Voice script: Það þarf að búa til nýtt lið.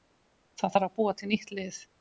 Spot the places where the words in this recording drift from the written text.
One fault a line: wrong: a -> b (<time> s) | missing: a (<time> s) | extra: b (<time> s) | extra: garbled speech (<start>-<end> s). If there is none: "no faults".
no faults